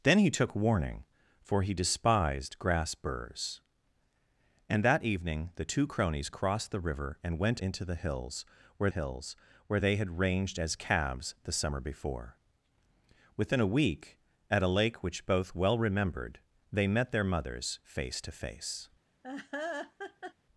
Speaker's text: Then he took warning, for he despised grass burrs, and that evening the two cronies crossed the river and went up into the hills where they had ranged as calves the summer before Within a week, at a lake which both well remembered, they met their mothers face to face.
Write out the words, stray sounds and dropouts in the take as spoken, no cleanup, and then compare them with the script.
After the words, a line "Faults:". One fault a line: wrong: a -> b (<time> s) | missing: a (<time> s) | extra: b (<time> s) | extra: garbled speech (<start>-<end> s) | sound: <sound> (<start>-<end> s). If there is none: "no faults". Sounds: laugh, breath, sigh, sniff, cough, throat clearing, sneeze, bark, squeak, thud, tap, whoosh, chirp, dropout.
Then he took warning, for he despised grass burrs, and that evening the two cronies crossed the river and went into the hills where hills where they had ranged as calves the summer before Within a week, at a lake which both well remembered, they met their mothers face to face.
Faults:
missing: up (7.6 s)
extra: hills where (8.9 s)
sound: laugh (19.2-20.3 s)